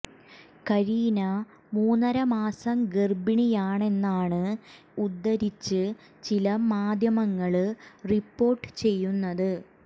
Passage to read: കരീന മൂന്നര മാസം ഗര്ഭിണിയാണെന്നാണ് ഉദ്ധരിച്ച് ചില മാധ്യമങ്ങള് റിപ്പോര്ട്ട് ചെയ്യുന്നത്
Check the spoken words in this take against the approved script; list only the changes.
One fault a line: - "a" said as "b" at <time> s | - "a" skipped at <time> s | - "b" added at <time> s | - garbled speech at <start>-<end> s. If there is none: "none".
none